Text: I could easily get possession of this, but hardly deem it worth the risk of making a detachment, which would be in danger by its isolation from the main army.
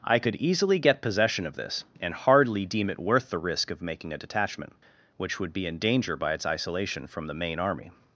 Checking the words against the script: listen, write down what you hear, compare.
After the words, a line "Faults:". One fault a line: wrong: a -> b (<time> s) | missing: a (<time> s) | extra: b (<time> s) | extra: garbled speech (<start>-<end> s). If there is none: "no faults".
I could easily get possession of this, and hardly deem it worth the risk of making a detachment, which would be in danger by its isolation from the main army.
Faults:
wrong: but -> and (2.0 s)